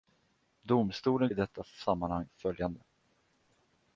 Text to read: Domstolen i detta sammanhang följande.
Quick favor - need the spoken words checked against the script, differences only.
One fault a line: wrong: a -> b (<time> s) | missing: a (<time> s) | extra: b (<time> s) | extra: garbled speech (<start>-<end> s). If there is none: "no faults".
no faults